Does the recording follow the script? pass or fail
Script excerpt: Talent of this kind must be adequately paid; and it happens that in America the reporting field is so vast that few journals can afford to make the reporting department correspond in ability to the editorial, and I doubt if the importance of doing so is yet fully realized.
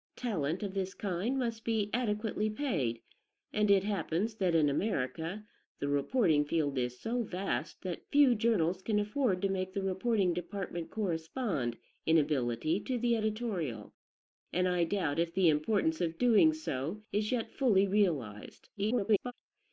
fail